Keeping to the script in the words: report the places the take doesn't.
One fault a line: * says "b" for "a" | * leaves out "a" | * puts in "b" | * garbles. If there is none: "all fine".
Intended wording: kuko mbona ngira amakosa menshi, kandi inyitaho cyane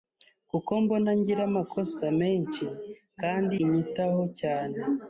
all fine